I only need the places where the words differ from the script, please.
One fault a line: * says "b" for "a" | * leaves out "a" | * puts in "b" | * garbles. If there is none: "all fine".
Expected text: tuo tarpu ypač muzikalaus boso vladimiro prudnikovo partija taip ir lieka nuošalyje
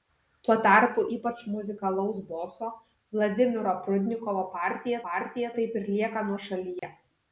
* puts in "partija"